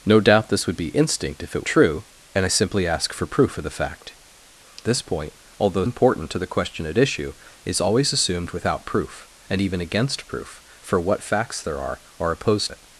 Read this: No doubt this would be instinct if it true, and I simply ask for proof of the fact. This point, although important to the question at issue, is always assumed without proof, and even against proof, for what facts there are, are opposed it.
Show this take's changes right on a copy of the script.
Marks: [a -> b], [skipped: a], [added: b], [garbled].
No doubt this would be instinct if it true, and I simply ask for proof of the fact. This point, although important to the question at issue, is always assumed without proof, and even against proof, for what facts there are, are opposed it.